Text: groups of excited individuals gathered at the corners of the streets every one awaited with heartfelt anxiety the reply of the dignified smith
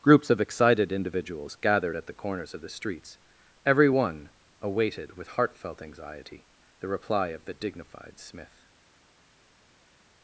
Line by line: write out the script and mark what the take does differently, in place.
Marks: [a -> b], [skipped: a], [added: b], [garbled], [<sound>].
groups of excited individuals gathered at the corners of the streets every one awaited with heartfelt anxiety the reply of the dignified smith